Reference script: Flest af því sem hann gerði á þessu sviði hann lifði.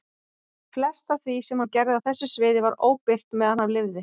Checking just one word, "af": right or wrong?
right